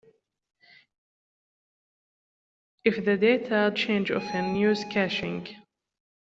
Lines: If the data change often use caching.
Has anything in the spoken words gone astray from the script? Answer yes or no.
no